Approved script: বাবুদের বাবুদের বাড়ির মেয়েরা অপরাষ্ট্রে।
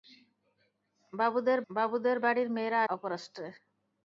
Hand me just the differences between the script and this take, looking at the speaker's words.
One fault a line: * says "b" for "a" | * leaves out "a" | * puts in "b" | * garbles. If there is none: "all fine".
all fine